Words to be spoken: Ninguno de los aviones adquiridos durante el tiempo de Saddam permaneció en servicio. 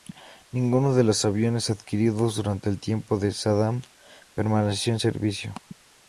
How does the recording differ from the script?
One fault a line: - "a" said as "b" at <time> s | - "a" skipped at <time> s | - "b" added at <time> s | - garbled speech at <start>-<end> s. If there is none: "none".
none